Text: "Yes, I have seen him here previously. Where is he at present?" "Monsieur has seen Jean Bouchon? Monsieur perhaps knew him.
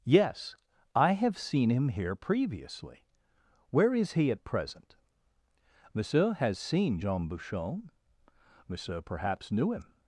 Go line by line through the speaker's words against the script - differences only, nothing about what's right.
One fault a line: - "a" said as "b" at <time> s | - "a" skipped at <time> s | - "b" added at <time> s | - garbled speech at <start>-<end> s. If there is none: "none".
none